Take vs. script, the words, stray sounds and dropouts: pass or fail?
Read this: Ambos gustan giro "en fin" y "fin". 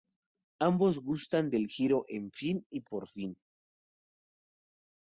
fail